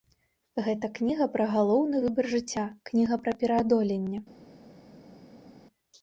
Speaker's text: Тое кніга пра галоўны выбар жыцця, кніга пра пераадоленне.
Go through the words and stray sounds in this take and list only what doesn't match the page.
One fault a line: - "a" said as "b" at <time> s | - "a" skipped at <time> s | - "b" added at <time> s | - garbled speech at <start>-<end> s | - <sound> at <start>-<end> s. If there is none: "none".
- "Тое" said as "Гэта" at 0.7 s